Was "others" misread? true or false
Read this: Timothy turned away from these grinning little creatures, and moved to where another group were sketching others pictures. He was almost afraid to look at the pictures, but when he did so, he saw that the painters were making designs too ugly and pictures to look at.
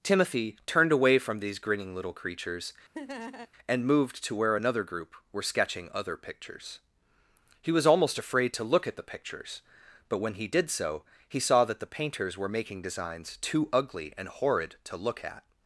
true